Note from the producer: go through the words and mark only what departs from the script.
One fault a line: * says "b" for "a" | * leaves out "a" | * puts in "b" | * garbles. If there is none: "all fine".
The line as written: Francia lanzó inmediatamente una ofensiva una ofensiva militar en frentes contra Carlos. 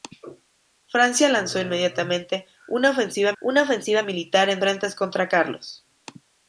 all fine